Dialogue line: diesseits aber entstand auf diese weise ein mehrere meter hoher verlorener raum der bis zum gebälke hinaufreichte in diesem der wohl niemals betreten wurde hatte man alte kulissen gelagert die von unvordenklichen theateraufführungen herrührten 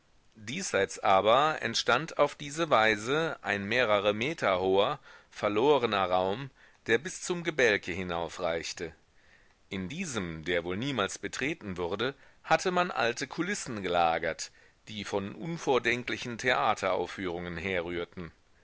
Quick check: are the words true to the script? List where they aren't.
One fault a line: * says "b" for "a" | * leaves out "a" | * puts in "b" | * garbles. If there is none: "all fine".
all fine